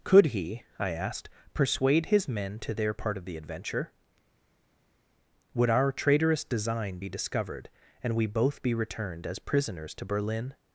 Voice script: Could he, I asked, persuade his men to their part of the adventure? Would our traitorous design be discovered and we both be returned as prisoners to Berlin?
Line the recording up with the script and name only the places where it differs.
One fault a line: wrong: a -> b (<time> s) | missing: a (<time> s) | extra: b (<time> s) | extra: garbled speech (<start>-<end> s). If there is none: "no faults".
no faults